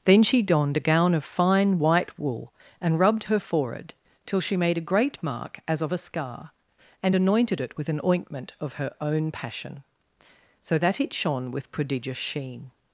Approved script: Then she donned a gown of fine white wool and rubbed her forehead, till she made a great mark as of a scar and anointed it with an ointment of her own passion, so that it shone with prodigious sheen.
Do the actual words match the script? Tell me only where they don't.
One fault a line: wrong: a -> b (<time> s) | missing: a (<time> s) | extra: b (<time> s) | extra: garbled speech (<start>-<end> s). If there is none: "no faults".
no faults